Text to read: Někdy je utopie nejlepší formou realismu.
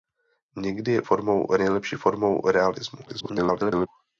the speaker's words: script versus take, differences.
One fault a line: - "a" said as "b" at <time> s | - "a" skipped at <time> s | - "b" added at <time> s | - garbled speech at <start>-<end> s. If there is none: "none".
- "utopie" said as "formou" at 1.0 s
- garbled speech at 3.1-3.9 s